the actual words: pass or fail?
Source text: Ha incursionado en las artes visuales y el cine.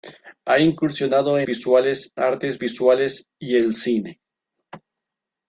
fail